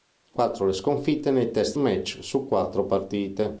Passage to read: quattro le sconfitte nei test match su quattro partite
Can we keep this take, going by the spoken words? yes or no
yes